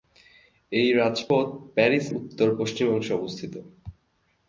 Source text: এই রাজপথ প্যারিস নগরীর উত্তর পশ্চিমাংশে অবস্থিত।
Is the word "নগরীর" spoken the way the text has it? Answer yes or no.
no